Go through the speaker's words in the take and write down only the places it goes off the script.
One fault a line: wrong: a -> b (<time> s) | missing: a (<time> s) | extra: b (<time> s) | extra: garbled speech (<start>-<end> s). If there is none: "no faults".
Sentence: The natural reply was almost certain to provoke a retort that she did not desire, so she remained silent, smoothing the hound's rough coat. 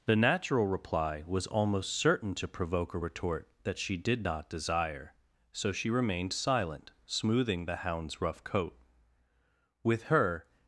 extra: With her (9.8 s)